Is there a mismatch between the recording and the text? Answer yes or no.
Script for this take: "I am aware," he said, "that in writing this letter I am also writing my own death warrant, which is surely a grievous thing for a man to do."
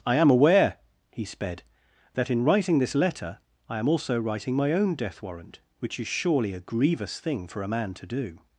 yes